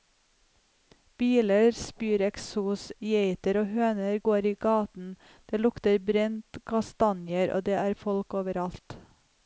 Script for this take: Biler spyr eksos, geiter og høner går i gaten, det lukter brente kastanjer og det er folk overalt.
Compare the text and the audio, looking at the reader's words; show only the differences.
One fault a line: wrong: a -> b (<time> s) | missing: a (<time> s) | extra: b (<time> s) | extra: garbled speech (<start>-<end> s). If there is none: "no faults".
no faults